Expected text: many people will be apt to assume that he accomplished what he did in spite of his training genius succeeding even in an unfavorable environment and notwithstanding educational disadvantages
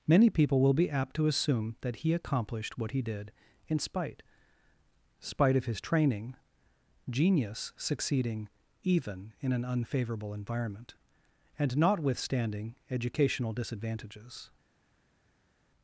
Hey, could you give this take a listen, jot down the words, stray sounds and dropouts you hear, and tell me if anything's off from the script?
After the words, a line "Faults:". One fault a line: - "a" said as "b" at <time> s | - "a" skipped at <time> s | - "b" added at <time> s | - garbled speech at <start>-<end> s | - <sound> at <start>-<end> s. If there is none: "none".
many people will be apt to assume that he accomplished what he did in spite spite of his training genius succeeding even in an unfavorable environment and notwithstanding educational disadvantages
Faults:
- "spite" added at 5.2 s